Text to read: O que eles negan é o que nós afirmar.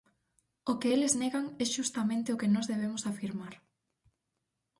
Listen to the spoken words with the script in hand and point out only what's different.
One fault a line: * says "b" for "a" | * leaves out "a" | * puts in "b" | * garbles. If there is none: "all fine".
* puts in "xustamente"
* puts in "debemos"